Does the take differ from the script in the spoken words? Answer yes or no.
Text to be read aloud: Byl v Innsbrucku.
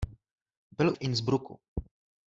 no